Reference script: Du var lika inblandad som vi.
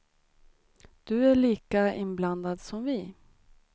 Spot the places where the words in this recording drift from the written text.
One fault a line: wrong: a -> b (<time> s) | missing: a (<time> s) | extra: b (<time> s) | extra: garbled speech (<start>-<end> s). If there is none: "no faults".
wrong: var -> är (1.2 s)